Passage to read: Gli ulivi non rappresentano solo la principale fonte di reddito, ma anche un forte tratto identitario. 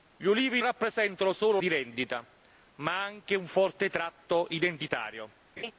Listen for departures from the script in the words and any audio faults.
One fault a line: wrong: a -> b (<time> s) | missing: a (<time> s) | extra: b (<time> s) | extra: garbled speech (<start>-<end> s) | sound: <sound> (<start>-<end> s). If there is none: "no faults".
missing: non (0.6 s)
missing: la principale fonte (1.6 s)
sound: laugh (5.6-5.7 s)